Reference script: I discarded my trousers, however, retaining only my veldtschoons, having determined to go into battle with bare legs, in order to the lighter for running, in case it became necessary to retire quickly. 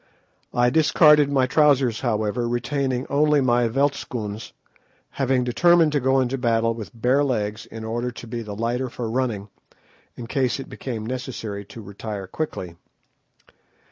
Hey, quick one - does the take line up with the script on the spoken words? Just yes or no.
no